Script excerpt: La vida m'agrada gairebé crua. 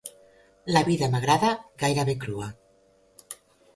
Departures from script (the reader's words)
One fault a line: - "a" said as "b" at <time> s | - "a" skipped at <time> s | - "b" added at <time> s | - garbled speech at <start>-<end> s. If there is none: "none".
none